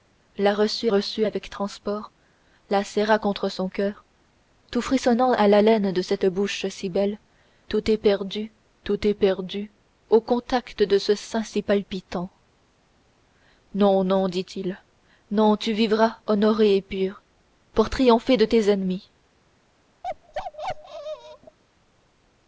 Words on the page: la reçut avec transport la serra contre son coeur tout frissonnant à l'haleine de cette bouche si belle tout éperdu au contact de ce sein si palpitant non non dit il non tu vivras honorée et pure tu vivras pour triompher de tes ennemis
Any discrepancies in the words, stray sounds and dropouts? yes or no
yes